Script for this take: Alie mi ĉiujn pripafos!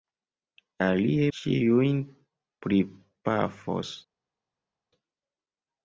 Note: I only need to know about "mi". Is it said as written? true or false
false